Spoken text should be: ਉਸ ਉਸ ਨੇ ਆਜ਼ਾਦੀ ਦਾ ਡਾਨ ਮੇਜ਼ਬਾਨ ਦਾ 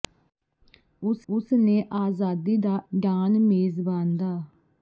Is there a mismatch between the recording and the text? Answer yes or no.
no